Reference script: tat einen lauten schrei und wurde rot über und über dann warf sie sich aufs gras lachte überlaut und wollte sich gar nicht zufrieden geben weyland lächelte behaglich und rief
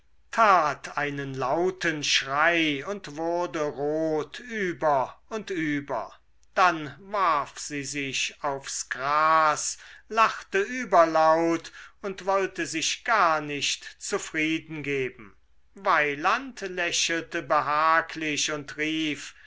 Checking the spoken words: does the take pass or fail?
pass